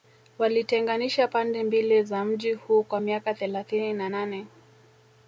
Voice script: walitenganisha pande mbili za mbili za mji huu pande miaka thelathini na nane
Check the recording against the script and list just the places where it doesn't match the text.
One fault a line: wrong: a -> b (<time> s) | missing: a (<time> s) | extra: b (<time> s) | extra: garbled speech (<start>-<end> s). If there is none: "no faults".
missing: mbili za (2.2 s)
wrong: pande -> kwa (2.8 s)